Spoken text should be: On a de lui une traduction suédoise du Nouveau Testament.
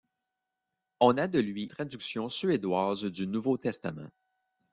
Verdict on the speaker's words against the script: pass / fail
fail